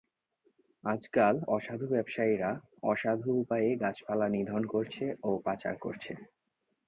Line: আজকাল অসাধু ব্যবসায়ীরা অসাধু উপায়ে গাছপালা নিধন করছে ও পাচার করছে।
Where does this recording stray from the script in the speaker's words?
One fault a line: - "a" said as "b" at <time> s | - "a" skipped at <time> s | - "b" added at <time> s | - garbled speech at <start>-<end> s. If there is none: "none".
none